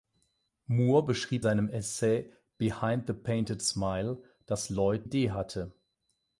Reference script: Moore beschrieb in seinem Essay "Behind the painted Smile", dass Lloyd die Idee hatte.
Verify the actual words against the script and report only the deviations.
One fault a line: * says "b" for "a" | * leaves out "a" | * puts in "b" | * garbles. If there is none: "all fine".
* leaves out "in"
* leaves out "die"